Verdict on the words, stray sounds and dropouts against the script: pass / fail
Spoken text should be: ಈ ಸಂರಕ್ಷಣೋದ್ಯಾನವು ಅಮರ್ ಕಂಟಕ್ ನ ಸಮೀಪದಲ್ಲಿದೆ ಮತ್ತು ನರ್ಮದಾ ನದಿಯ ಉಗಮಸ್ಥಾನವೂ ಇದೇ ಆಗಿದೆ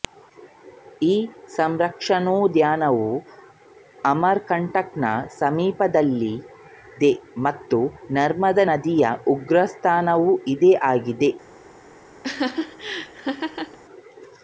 fail